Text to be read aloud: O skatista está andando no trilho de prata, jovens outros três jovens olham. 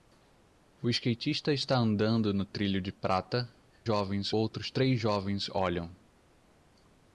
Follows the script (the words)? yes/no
yes